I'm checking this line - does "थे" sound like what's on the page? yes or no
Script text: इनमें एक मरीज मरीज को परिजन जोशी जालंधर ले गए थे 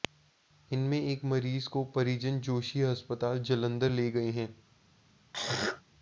no